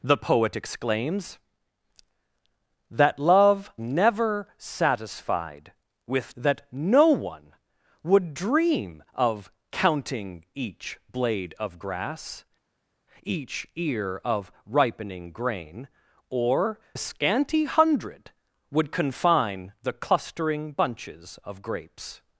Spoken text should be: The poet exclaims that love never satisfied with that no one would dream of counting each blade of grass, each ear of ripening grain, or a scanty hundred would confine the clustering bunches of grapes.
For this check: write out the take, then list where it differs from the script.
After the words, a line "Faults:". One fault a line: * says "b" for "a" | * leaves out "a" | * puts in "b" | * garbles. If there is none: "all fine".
The poet exclaims that love never satisfied with that no one would dream of counting each blade of grass, each ear of ripening grain, or a scanty hundred would confine the clustering bunches of grapes.
Faults:
all fine